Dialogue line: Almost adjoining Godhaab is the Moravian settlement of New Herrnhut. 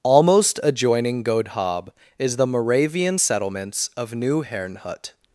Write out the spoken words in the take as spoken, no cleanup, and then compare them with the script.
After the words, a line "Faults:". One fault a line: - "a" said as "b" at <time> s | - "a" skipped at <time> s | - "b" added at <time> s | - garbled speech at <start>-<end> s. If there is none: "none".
Almost adjoining Godhaab is the Moravian settlements of New Herrnhut.
Faults:
- "settlement" said as "settlements" at 3.2 s